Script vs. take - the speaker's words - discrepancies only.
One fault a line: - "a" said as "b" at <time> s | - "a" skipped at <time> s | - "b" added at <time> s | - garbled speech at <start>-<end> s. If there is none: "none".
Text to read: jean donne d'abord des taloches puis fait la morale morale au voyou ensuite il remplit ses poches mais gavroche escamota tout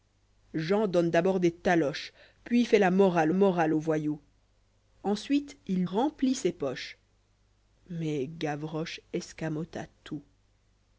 none